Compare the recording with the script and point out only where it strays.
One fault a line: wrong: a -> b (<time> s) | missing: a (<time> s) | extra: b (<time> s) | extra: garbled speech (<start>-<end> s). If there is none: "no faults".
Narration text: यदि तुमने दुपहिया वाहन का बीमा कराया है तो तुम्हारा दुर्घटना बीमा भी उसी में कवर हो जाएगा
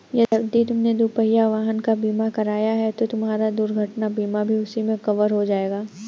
no faults